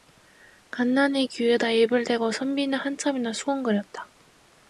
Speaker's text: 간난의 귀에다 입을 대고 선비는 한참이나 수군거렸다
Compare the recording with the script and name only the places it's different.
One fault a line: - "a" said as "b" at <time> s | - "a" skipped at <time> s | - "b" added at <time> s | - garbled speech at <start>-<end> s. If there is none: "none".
none